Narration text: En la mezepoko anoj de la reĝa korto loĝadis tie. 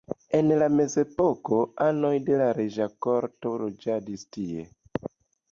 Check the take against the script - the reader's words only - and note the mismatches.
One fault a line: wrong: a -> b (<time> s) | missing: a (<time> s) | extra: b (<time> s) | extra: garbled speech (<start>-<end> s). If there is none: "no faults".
no faults